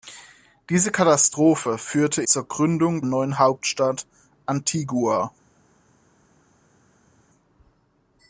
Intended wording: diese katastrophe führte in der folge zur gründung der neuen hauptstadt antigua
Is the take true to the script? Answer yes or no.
no